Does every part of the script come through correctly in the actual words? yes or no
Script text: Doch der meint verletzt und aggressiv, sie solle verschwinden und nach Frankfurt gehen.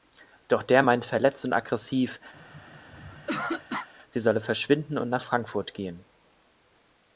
yes